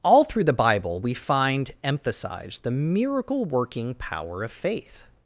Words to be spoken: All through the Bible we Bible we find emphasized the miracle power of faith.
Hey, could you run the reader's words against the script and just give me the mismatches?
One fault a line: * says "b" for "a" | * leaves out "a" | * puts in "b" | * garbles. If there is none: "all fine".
* leaves out "Bible we"
* puts in "working"